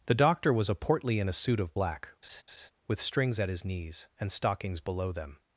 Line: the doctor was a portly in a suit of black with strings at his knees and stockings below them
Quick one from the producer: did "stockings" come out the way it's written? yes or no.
yes